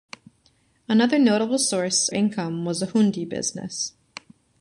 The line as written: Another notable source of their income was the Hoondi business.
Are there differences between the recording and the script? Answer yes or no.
yes